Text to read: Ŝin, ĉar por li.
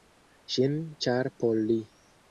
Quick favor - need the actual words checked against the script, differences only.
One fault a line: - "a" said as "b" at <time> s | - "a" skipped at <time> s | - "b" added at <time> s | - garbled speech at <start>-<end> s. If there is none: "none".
none